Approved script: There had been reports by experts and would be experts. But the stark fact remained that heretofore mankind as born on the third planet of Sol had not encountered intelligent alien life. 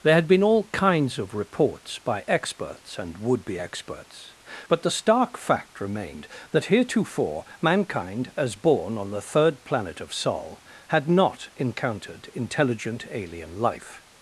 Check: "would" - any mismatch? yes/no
no